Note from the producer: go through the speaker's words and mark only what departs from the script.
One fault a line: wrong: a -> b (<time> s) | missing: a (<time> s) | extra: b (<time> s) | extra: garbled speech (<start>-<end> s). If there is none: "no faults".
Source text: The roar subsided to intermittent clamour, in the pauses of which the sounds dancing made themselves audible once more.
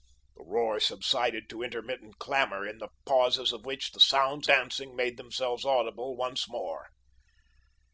no faults